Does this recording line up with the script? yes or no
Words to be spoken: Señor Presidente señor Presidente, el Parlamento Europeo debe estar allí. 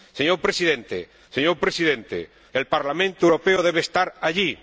yes